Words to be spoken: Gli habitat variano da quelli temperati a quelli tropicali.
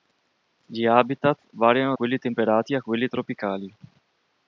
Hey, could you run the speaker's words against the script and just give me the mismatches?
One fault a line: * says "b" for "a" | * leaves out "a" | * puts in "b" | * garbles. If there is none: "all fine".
* leaves out "da"